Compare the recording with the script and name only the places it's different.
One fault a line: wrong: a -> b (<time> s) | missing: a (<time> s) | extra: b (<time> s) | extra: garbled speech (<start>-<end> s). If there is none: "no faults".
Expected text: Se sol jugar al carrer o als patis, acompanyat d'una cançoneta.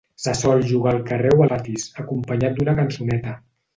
missing: als (1.4 s)